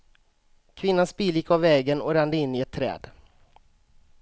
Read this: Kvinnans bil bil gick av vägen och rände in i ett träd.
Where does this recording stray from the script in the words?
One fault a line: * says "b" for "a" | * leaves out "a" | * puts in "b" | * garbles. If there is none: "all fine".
* leaves out "bil"